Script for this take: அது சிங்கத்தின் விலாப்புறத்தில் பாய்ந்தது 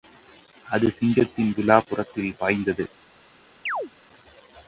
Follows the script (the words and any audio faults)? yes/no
no